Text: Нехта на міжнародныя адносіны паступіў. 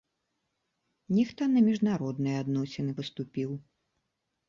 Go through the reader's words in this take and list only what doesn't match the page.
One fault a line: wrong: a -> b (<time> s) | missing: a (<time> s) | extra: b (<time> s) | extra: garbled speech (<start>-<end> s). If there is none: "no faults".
no faults